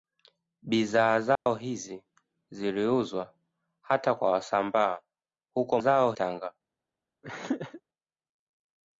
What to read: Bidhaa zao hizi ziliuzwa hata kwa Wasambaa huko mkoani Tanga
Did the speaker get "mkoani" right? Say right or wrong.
wrong